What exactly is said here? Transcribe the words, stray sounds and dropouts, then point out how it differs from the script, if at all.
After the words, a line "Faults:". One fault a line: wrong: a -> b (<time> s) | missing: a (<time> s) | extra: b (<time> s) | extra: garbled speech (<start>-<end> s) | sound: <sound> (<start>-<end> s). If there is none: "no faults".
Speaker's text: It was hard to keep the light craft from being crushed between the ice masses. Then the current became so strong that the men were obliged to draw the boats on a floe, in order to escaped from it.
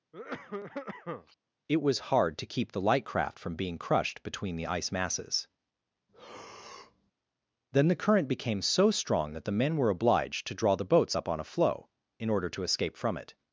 It was hard to keep the light craft from being crushed between the ice masses. Then the current became so strong that the men were obliged to draw the boats up on a floe, in order to escape from it.
Faults:
sound: cough (0.1-1.4 s)
sound: breath (6.1-7.1 s)
extra: up (11.1 s)
wrong: escaped -> escape (12.6 s)